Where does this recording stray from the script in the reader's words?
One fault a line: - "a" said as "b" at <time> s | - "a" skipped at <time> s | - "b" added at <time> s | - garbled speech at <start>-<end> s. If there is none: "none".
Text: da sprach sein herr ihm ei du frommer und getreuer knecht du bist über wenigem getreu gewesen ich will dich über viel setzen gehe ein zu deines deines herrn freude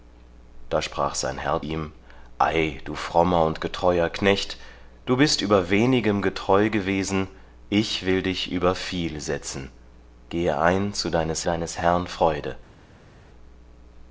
none